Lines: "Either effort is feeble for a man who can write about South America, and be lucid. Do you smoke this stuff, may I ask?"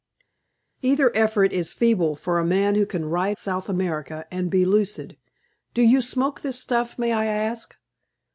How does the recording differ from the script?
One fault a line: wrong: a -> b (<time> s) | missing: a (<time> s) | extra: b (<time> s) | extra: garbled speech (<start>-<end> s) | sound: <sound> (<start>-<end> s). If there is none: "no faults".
missing: about (3.4 s)